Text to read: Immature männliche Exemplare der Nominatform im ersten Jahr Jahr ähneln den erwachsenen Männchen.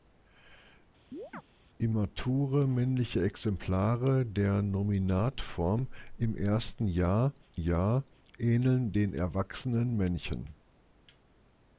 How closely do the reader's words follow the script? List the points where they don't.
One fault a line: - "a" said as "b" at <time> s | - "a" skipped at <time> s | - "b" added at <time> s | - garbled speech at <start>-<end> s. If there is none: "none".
none